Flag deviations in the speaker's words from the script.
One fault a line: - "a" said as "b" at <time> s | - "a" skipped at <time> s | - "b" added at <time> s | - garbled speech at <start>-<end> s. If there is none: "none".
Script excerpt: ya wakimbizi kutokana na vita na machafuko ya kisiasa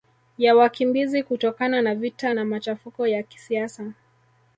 none